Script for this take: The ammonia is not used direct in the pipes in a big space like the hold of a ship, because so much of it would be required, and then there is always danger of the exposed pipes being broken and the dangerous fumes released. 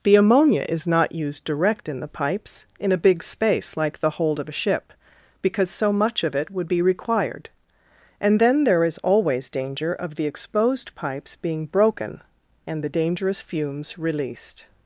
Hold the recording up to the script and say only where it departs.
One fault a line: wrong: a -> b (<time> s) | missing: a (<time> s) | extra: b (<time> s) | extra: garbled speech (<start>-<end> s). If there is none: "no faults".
no faults